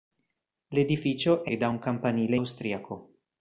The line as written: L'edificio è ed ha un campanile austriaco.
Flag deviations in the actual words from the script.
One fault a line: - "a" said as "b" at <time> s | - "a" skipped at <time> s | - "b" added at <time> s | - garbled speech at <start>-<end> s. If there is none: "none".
none